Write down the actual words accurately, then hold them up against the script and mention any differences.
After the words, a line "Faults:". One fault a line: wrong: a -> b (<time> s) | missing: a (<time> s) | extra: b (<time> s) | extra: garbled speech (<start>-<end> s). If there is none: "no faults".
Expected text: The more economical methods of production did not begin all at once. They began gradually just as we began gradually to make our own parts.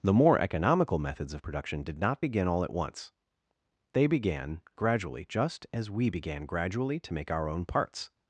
The more economical methods of production did not begin all at once. They began gradually just as we began gradually to make our own parts.
Faults:
no faults